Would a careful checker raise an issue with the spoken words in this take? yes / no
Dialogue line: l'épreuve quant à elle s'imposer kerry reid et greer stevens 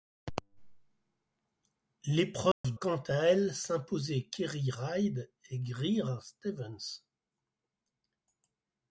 no